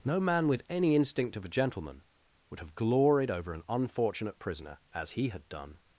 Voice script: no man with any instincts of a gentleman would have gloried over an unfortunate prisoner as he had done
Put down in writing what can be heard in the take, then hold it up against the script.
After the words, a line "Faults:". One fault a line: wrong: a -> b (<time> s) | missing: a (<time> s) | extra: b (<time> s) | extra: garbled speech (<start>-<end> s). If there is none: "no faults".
no man with any instinct of a gentleman would have gloried over an unfortunate prisoner as he had done
Faults:
wrong: instincts -> instinct (0.9 s)